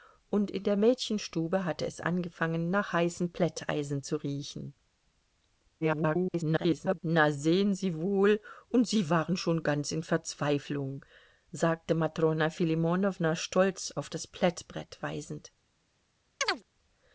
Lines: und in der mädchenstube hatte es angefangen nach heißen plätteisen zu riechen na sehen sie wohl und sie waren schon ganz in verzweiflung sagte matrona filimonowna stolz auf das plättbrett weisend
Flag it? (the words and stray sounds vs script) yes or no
yes